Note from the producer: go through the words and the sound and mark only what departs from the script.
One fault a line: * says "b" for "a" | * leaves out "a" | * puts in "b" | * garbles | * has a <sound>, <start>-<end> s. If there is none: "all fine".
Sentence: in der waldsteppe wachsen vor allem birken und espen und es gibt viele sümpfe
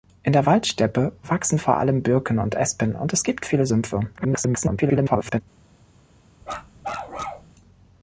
* garbles
* has a bark, 6.4-7.5 s